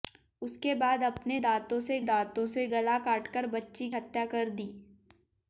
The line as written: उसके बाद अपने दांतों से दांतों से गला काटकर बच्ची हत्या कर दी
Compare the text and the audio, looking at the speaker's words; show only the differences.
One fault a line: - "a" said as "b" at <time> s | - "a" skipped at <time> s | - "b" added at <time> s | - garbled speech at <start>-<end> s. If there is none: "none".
none